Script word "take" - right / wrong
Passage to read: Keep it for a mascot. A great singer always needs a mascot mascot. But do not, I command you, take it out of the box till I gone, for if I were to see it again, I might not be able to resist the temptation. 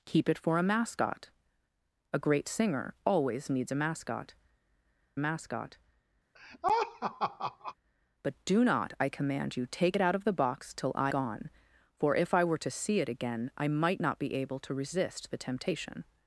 right